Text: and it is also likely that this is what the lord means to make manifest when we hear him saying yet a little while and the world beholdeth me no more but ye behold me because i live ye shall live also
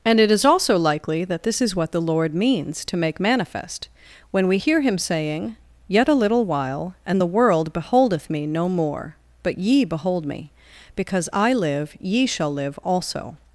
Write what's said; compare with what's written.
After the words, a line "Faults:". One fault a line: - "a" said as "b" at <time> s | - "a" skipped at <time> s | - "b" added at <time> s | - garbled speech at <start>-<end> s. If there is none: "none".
and it is also likely that this is what the lord means to make manifest when we hear him saying yet a little while and the world beholdeth me no more but ye behold me because i live ye shall live also
Faults:
none